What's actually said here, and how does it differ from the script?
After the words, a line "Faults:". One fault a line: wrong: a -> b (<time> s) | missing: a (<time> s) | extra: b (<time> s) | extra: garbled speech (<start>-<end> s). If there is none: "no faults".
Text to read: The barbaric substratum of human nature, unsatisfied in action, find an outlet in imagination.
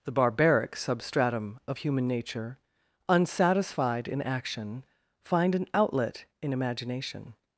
The barbaric substratum of human nature, unsatisfied in action, find an outlet in imagination.
Faults:
no faults